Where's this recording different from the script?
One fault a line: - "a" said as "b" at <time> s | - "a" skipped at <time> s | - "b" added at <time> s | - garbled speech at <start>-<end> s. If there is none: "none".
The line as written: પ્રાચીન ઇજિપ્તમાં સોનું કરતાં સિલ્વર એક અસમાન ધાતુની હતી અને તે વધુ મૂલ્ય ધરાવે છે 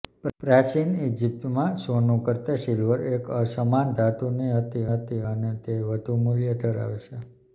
- "હતી" added at 4.9 s